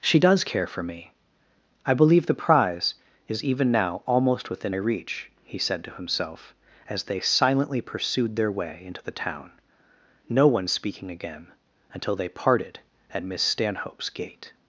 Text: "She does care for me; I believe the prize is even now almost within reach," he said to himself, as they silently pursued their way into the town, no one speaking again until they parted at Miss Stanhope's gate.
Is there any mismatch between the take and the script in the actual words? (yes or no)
no